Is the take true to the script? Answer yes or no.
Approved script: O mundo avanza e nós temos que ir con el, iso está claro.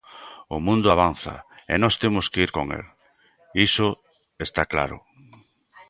yes